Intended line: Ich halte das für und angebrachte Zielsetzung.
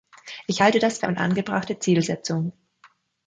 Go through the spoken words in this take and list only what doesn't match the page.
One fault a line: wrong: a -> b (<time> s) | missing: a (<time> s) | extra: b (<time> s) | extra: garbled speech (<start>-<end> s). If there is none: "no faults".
no faults